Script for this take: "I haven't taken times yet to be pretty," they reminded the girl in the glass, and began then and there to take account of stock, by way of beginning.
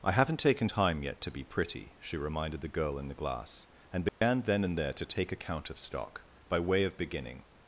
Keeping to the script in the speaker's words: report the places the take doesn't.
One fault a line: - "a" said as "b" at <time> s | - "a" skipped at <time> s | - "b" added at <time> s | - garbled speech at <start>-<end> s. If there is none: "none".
- "times" said as "time" at 0.6 s
- "they" said as "she" at 2.0 s